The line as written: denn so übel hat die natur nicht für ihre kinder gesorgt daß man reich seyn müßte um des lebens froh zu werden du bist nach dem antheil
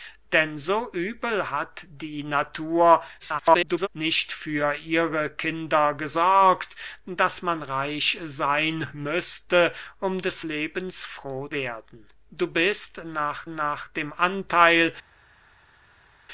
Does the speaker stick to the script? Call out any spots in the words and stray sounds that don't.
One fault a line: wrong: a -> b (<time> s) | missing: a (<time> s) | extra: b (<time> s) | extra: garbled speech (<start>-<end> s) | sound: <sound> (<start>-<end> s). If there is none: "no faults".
extra: garbled speech (3.2-3.9 s)
missing: zu (11.5 s)
extra: nach (13.5 s)